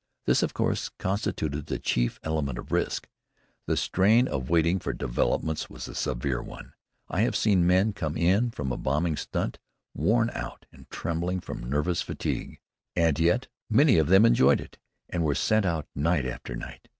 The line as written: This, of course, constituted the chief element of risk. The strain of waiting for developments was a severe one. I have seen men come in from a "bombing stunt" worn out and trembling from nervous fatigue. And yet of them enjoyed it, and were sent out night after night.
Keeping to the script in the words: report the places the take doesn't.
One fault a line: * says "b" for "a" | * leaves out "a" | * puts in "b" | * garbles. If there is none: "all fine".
* puts in "many"